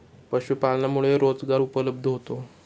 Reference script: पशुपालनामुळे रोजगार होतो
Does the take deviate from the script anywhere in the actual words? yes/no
yes